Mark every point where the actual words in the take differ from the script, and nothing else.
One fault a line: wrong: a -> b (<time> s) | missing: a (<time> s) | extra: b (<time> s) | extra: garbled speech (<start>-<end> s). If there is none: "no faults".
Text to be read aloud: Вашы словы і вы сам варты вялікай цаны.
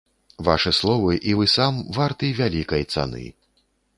no faults